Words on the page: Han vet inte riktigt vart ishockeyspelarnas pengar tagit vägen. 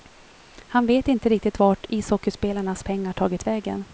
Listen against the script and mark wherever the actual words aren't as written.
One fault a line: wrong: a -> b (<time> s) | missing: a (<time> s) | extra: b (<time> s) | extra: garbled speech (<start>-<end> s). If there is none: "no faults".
no faults